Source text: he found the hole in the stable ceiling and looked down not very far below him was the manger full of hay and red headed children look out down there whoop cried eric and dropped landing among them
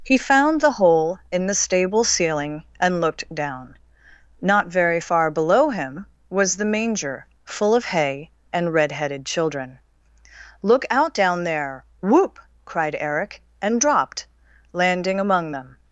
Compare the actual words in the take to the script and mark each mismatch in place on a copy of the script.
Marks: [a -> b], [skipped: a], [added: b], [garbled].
he found the hole in the stable ceiling and looked down not very far below him was the manger full of hay and red headed children look out down there whoop cried eric and dropped landing among them